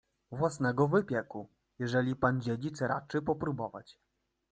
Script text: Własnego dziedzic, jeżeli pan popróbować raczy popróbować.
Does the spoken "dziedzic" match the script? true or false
false